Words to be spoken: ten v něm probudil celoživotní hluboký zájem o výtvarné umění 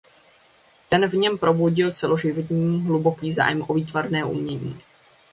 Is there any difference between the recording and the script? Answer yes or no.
no